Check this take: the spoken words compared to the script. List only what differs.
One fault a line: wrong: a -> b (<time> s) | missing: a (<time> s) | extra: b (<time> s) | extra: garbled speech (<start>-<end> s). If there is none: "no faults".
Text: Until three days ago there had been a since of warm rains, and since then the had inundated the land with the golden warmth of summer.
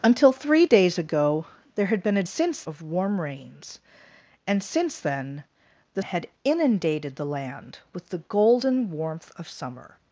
no faults